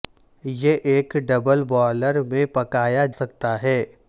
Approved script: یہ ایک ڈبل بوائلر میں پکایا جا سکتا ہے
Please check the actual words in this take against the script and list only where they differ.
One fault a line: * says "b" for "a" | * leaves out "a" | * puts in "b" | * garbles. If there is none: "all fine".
* leaves out "جا"